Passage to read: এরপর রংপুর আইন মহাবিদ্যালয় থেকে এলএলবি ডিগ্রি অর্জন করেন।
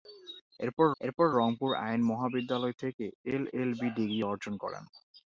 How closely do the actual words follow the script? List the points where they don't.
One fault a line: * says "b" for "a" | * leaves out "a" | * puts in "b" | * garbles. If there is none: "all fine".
* puts in "এরপর"